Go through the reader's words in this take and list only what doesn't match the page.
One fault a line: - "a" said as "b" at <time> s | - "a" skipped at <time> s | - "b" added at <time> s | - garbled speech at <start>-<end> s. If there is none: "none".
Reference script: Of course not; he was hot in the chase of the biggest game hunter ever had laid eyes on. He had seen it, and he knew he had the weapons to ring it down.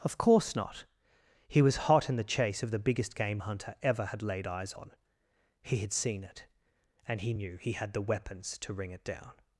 none